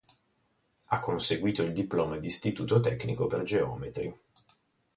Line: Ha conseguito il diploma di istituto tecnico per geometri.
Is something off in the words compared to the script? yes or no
no